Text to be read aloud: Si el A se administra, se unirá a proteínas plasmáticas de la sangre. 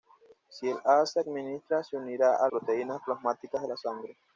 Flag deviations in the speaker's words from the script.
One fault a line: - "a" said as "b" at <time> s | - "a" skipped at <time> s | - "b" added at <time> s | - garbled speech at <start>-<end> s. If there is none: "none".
none